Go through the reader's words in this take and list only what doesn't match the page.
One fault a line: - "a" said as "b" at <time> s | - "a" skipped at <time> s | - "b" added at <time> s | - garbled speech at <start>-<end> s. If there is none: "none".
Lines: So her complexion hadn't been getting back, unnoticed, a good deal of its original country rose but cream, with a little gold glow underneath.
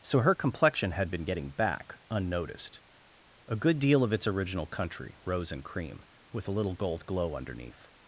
- "hadn't" said as "had" at 0.9 s
- "but" said as "and" at 5.5 s